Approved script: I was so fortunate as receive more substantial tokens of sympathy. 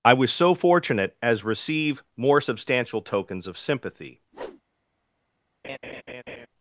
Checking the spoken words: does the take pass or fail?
pass